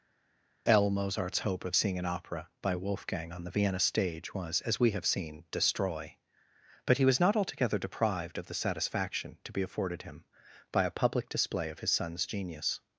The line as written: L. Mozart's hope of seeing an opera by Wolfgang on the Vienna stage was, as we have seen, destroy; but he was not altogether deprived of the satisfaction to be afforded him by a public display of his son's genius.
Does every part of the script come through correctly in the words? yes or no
yes